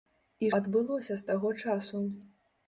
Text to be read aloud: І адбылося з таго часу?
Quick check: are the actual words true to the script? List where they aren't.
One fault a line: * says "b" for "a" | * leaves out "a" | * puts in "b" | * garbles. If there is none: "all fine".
all fine